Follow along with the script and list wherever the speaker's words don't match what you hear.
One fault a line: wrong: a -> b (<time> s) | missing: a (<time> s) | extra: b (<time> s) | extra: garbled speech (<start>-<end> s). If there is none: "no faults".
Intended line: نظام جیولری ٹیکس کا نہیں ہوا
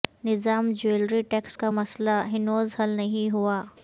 extra: مسئلہ ہنوز حل (1.7 s)